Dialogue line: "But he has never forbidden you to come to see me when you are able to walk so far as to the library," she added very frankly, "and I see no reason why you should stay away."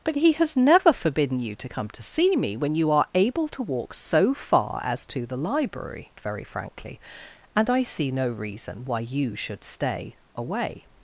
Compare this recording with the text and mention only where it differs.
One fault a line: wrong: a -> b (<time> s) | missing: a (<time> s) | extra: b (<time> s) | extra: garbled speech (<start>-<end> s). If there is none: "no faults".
missing: she added (6.1 s)